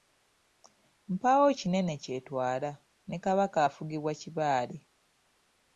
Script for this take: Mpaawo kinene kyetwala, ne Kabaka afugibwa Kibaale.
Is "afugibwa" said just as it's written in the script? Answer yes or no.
yes